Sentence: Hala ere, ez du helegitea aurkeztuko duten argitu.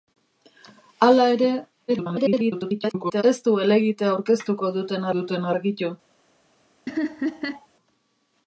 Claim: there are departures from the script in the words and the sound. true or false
true